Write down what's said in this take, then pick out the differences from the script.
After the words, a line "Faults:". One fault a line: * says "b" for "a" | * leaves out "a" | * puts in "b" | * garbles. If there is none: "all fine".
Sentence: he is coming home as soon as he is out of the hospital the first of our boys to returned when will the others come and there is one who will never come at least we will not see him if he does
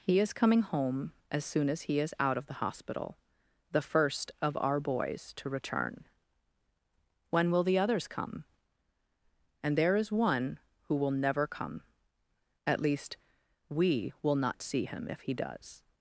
he is coming home as soon as he is out of the hospital the first of our boys to return when will the others come and there is one who will never come at least we will not see him if he does
Faults:
* says "return" for "returned"